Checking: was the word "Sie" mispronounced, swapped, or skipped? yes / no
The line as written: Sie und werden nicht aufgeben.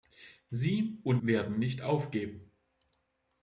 no